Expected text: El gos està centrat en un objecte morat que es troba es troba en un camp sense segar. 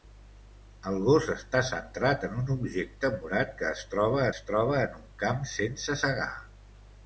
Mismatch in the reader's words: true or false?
false